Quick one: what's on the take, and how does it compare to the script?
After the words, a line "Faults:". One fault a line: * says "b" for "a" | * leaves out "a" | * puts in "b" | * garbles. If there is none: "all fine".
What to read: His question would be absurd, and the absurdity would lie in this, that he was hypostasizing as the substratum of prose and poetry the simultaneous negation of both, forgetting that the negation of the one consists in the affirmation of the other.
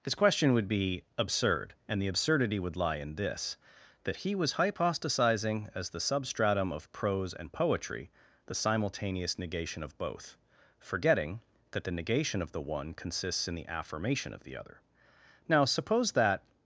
His question would be absurd, and the absurdity would lie in this, that he was hypostasizing as the substratum of prose and poetry the simultaneous negation of both, forgetting that the negation of the one consists in the affirmation of the other. Now, suppose that
Faults:
* puts in "Now suppose that"